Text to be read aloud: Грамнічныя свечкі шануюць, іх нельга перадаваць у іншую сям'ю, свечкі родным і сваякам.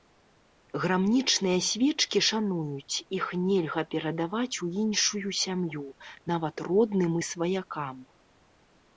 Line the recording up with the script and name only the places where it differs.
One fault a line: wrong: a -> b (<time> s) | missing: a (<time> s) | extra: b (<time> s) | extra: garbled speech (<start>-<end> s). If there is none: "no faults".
wrong: свечкі -> нават (6.4 s)